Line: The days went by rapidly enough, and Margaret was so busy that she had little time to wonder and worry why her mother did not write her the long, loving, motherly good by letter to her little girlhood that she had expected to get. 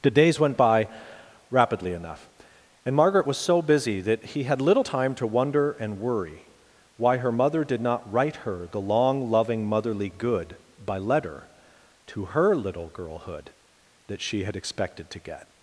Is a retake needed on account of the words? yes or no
yes